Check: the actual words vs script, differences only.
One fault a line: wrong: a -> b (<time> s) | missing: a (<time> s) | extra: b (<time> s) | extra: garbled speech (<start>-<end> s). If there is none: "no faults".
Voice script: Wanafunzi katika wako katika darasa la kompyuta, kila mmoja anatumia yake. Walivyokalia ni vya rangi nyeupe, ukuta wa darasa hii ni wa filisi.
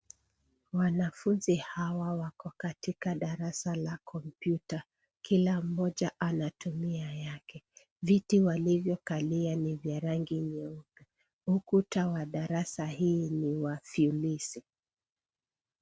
wrong: katika -> hawa (1.6 s)
extra: Viti (8.0 s)